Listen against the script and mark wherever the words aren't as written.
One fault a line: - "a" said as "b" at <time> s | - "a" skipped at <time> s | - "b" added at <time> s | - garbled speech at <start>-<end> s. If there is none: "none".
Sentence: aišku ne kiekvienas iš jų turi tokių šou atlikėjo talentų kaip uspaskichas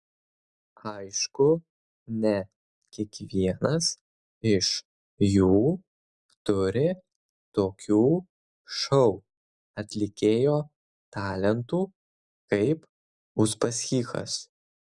none